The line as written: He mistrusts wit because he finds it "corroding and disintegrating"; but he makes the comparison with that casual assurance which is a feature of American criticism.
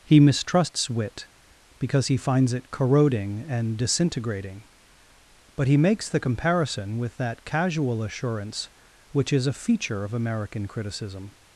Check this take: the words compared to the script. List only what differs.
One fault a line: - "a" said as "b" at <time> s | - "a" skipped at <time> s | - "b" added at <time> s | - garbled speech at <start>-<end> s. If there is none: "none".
none